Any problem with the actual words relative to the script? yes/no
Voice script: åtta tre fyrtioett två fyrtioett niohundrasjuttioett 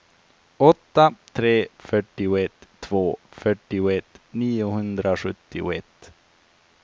no